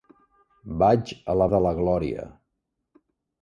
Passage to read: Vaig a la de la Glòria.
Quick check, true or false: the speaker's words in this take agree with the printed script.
true